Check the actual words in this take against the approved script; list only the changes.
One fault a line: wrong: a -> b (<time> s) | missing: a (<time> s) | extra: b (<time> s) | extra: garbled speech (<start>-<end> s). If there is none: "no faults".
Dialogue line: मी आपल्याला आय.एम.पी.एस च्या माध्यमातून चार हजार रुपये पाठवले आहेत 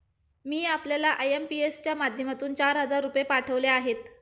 no faults